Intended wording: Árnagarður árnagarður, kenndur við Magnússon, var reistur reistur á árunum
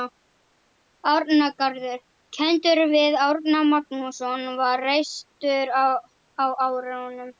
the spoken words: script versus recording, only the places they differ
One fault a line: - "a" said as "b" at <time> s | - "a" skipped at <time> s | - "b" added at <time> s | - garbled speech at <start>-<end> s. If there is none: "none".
- "árnagarður" skipped at 2.0 s
- "Árna" added at 3.3 s
- "reistur" skipped at 5.7 s